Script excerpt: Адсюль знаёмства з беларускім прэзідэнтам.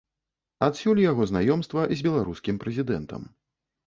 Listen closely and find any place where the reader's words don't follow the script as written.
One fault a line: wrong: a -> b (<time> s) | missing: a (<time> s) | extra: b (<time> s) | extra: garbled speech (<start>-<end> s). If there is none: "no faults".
extra: яго (1.1 s)